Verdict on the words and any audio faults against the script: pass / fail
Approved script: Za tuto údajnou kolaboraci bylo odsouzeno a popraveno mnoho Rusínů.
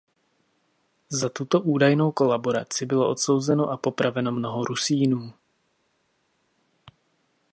pass